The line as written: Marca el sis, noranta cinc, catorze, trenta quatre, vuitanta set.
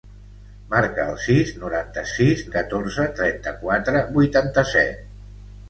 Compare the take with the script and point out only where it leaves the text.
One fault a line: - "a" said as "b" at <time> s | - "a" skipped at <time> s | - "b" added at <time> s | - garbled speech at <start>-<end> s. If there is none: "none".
- "cinc" said as "sis" at 2.2 s